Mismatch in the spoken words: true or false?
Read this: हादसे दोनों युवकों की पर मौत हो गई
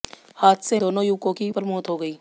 false